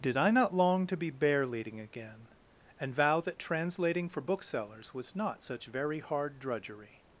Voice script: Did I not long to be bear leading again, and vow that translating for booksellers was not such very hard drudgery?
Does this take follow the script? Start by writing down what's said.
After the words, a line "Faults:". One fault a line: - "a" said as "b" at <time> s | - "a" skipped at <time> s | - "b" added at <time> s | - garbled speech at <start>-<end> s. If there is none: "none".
Did I not long to be bear leading again, and vow that translating for booksellers was not such very hard drudgery?
Faults:
none